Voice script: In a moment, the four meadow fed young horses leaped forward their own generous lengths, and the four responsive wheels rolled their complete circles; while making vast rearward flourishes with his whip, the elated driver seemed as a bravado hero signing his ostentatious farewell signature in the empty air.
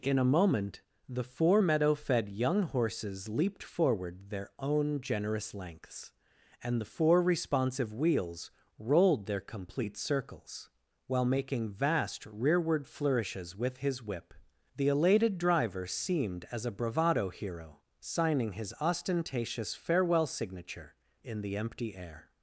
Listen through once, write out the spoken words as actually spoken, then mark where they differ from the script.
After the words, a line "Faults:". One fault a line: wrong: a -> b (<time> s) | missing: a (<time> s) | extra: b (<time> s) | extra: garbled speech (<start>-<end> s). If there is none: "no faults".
In a moment, the four meadow fed young horses leaped forward their own generous lengths, and the four responsive wheels rolled their complete circles; while making vast rearward flourishes with his whip, the elated driver seemed as a bravado hero signing his ostentatious farewell signature in the empty air.
Faults:
no faults